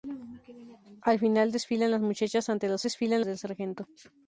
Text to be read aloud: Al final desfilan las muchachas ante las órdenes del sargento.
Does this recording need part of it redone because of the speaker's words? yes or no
yes